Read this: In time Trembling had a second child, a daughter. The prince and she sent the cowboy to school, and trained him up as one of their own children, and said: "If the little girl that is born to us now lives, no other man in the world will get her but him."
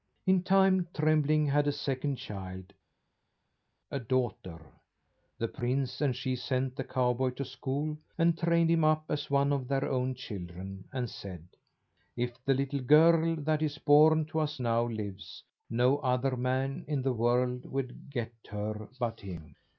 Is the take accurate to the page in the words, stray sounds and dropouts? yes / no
yes